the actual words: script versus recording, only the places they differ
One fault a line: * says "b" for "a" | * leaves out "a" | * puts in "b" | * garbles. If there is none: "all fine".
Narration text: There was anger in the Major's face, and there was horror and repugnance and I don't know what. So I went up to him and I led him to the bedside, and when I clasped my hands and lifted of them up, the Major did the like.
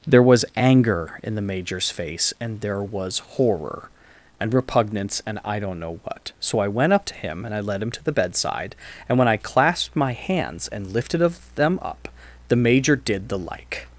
all fine